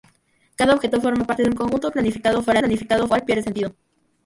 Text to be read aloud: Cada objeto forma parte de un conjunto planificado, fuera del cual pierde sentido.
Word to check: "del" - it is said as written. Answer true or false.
false